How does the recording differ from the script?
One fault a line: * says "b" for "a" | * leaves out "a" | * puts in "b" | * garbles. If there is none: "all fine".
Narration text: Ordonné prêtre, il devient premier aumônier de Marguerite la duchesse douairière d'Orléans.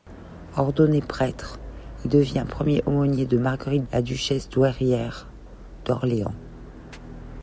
all fine